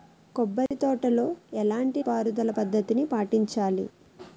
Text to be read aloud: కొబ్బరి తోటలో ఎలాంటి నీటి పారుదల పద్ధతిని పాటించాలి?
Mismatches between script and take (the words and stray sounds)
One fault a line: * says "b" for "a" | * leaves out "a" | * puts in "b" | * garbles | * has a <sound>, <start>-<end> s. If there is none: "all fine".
* has a dropout, 0.7-0.7 s
* leaves out "నీటి"